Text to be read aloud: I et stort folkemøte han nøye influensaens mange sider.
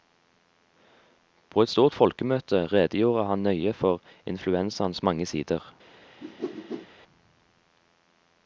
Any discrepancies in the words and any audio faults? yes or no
yes